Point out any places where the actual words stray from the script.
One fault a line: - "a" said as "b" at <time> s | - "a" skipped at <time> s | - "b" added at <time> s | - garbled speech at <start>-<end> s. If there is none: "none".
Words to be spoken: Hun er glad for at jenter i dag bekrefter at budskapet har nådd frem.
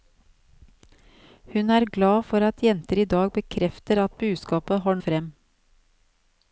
- "nådd" skipped at 5.0 s